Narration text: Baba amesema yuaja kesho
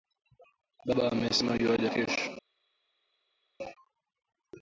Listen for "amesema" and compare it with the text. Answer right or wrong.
right